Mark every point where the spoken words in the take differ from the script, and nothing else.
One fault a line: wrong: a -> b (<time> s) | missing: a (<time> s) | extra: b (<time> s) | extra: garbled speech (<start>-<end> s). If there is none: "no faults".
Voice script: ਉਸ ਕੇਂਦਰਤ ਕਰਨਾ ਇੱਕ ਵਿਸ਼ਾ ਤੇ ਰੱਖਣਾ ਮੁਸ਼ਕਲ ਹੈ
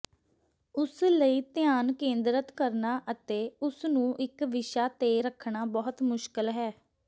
extra: ਲਈ ਧਿਆਨ (1.1 s)
extra: ਅਤੇ ਉਸ ਨੂੰ (3.1 s)
extra: ਬਹੁਤ (5.7 s)